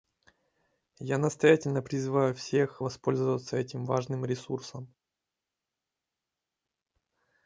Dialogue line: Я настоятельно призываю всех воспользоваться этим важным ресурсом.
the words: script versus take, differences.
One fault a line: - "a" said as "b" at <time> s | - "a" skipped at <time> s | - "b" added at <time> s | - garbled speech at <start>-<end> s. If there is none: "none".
none